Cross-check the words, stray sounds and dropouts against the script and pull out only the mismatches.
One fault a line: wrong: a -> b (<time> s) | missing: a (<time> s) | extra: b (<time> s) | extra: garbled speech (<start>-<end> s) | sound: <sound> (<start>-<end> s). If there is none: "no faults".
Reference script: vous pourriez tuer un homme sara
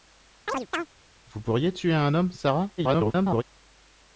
sound: chirp (0.5-0.9 s)
extra: garbled speech (2.8-3.4 s)